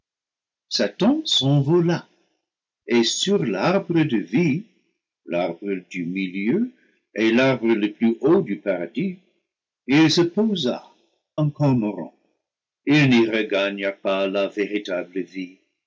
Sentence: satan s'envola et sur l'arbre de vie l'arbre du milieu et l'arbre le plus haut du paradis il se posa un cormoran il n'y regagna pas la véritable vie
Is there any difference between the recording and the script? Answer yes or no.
no